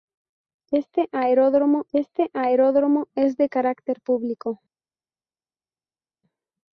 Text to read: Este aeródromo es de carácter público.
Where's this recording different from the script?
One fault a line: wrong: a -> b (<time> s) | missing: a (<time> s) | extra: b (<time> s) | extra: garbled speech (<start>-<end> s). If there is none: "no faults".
extra: este aeródromo (1.9 s)